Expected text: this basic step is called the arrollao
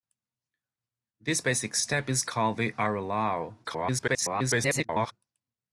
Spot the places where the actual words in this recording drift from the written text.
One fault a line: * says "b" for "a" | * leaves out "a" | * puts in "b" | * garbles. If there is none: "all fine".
* garbles